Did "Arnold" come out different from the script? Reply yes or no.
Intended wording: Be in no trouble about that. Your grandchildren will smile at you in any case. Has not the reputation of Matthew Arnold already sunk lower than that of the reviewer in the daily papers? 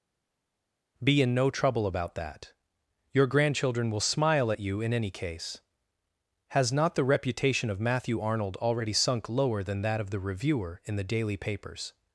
no